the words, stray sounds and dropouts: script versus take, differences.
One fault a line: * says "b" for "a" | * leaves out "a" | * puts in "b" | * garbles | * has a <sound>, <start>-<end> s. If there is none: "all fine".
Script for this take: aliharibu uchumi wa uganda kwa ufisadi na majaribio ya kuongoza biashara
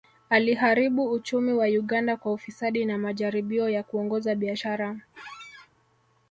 * has a squeak, 5.1-5.7 s